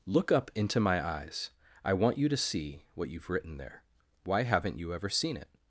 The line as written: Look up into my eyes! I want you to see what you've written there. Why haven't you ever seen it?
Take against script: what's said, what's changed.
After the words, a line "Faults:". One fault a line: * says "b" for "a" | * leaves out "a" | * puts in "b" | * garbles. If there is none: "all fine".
Look up into my eyes! I want you to see what you've written there. Why haven't you ever seen it?
Faults:
all fine